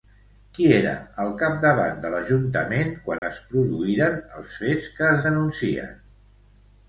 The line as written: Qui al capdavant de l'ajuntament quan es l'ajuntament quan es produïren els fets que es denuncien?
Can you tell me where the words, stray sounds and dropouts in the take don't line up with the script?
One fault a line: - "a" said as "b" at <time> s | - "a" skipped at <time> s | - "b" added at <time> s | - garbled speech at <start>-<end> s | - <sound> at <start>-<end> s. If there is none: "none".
- "era" added at 0.8 s
- dropout at 3.2-3.2 s
- "l'ajuntament quan es" skipped at 3.4 s